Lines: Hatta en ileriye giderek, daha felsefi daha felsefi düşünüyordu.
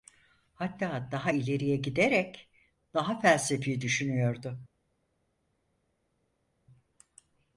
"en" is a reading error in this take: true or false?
true